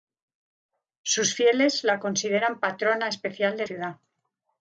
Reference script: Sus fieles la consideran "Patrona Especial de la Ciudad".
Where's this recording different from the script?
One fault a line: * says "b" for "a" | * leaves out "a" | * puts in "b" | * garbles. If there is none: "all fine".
* leaves out "la"